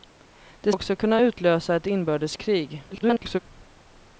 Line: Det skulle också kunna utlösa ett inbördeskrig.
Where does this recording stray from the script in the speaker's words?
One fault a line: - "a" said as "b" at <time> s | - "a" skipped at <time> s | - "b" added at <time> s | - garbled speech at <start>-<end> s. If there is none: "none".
- "skulle" skipped at 0.7 s
- garbled speech at 2.9-3.4 s